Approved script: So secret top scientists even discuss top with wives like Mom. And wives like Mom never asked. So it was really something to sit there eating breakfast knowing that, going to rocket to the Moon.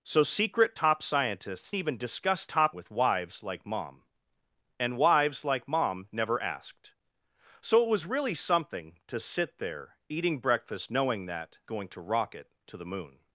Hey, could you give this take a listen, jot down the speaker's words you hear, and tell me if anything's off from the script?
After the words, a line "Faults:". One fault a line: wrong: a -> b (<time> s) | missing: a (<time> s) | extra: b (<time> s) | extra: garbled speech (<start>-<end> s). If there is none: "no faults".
So secret top scientists even discuss top with wives like Mom. And wives like Mom never asked. So it was really something to sit there eating breakfast knowing that, going to rocket to the Moon.
Faults:
no faults